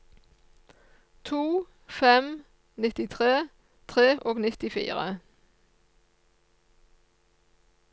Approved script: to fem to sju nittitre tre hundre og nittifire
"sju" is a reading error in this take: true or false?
true